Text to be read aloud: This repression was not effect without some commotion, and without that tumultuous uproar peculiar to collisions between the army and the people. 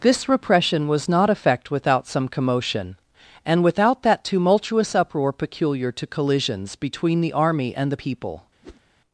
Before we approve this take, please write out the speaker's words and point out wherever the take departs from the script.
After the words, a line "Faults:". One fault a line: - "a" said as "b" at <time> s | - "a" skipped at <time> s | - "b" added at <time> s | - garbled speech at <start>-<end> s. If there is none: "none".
This repression was not effect without some commotion, and without that tumultuous uproar peculiar to collisions between the army and the people.
Faults:
none